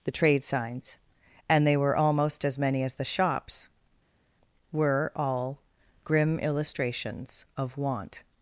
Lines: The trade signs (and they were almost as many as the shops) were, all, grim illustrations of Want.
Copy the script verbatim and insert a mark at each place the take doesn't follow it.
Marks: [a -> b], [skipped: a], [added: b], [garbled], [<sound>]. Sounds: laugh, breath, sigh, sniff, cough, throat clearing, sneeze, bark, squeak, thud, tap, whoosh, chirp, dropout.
The trade signs (and they were almost as many as the shops) were, all, grim illustrations of Want.